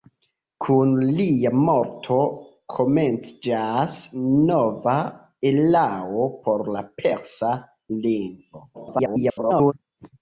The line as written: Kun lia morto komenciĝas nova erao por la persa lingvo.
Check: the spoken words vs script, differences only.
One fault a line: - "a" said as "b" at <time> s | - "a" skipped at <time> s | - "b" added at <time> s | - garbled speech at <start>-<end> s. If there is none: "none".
- garbled speech at 8.7-9.7 s